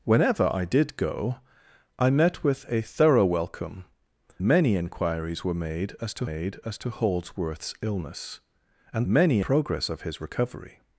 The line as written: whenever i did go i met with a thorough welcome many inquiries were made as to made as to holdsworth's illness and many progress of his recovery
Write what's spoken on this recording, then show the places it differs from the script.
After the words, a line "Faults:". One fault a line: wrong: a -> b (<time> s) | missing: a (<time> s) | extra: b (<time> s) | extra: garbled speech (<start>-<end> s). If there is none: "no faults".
whenever i did go i met with a thorough welcome many inquiries were made as to made as to holdsworth's illness and many progress of his recovery
Faults:
no faults